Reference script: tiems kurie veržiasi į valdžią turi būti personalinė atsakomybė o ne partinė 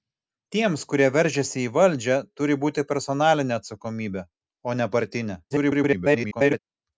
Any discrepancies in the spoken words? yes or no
yes